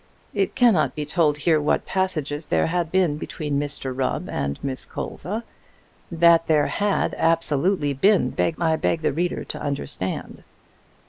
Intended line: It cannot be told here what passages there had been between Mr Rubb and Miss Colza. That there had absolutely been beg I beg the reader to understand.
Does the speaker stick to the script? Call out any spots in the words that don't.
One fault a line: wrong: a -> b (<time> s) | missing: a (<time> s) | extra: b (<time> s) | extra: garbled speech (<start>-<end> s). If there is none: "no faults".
no faults